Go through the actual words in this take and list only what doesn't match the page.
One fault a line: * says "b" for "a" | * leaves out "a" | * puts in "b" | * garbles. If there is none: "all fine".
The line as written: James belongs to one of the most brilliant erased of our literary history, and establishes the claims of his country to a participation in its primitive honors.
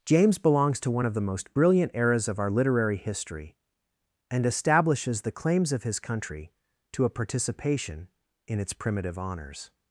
* says "eras" for "erased"